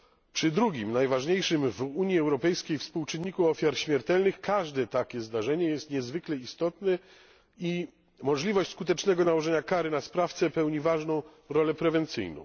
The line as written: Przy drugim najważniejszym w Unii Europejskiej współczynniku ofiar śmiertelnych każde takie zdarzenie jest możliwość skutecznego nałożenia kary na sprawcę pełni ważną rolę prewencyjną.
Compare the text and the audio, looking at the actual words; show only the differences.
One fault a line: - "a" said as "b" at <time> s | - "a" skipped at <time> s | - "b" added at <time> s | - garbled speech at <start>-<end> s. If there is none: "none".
- "niezwykle istotne i" added at 5.9 s